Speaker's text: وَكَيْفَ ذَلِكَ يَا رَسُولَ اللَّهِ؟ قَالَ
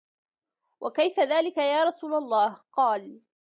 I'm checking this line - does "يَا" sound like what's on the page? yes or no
yes